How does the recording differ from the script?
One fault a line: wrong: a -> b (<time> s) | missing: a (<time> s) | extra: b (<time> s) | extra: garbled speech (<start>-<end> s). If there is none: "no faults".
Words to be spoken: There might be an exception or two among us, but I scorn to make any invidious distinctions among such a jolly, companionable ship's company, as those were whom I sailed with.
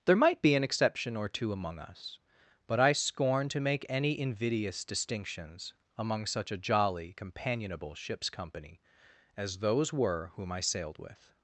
no faults